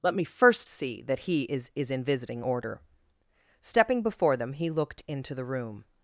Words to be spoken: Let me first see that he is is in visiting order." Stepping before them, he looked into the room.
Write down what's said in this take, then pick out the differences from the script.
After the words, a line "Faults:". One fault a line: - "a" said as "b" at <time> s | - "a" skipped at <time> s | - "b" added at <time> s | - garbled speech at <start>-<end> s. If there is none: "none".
Let me first see that he is is in visiting order." Stepping before them, he looked into the room.
Faults:
none